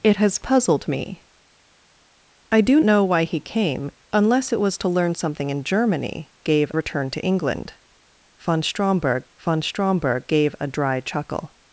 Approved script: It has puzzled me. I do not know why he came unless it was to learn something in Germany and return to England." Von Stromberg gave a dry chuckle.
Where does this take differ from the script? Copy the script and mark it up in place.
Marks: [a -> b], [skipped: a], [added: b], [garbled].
It has puzzled me. I do [skipped: not] know why he came unless it was to learn something in Germany [and -> gave] return to England." Von Stromberg [added: von Stromberg] gave a dry chuckle.